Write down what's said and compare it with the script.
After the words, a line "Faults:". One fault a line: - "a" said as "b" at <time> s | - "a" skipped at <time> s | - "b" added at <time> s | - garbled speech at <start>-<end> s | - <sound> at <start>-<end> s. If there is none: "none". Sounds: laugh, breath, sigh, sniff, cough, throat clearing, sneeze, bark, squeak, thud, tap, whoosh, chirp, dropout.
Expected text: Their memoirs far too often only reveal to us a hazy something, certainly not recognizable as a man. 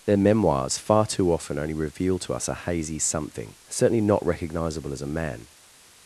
Their memoirs far too often only reveal to us a hazy something, certainly not recognizable as a man.
Faults:
none